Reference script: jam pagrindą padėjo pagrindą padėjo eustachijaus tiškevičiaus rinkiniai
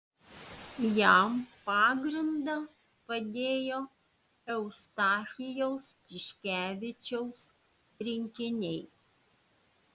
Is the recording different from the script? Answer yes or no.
yes